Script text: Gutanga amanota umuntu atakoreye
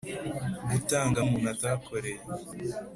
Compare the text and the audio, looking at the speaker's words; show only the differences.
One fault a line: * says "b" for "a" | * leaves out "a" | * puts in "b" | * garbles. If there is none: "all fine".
* leaves out "amanota"